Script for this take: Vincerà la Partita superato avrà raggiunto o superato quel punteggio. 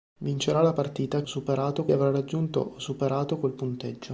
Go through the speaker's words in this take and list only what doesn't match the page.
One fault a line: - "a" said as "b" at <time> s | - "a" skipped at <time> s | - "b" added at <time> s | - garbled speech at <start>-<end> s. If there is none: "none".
none